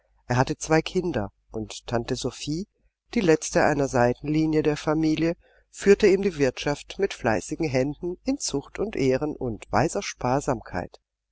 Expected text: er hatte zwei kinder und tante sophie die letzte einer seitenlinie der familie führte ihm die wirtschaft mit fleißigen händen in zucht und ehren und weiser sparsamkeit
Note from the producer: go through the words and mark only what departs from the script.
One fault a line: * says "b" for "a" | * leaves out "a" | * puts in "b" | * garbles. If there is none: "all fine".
all fine